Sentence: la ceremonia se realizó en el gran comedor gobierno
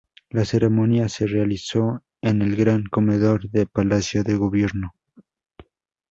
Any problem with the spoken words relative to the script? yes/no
yes